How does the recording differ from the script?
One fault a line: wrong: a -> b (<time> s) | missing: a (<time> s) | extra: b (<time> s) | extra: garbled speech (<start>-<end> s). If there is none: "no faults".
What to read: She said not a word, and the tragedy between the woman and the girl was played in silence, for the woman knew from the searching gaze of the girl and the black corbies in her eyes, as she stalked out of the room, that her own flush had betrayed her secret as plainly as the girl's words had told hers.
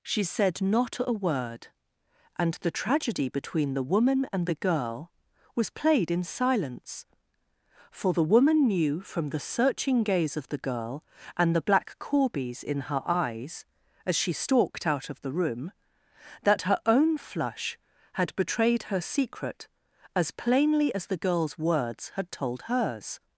no faults